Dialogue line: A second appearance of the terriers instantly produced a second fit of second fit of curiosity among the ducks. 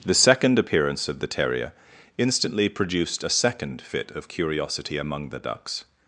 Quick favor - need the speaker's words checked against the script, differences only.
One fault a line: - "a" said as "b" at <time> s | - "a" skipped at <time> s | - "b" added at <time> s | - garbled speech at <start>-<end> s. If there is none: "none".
- "A" said as "The" at 0.0 s
- "terriers" said as "terrier" at 1.3 s
- "second fit of" skipped at 4.3 s